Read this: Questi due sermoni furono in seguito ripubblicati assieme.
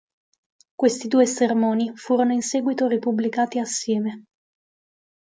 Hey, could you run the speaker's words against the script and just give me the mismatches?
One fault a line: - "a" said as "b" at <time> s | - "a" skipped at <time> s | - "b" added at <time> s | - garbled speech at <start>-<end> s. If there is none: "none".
none